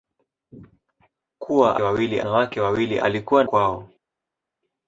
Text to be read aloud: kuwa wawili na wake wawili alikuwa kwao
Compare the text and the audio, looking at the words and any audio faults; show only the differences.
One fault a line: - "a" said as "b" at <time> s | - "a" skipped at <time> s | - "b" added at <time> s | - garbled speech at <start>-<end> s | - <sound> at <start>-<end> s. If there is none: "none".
none